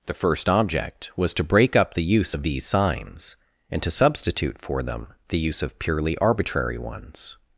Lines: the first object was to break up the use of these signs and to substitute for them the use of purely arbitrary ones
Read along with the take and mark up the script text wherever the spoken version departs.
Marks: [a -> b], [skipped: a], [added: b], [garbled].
the first object was to break up the use of these signs and to substitute for them the use of purely arbitrary ones